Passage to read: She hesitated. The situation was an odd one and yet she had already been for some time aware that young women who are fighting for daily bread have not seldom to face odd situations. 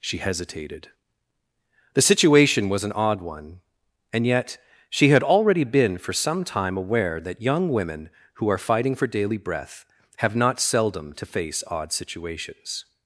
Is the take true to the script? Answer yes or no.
no